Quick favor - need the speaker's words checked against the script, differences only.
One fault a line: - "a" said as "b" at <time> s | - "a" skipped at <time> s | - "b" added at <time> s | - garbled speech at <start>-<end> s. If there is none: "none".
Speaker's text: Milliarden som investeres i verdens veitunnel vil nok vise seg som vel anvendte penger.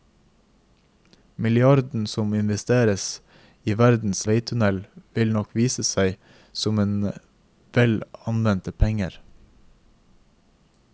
none